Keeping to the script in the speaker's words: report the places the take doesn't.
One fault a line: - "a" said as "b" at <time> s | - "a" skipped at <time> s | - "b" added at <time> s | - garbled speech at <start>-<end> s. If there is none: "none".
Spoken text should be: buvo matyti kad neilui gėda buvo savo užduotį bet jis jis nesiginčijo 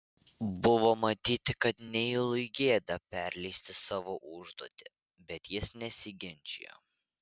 - "buvo" said as "perleisti" at 3.1 s
- "jis" skipped at 5.8 s